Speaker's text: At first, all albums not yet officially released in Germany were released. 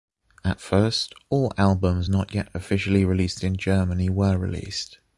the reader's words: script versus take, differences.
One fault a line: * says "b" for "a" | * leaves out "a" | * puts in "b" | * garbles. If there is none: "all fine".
all fine